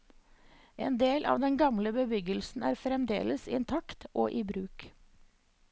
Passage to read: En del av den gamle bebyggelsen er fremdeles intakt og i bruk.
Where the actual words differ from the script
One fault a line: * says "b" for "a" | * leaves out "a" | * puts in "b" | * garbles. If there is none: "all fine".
all fine